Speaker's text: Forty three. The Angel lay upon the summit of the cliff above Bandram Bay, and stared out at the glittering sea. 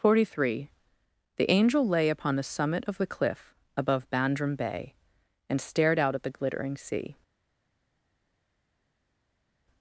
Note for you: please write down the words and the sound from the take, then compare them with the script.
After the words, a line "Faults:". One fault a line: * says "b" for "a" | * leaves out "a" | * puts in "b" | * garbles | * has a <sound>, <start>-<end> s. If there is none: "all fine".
Forty three. The Angel lay upon the summit of the cliff above Bandram Bay, and stared out at the glittering sea.
Faults:
all fine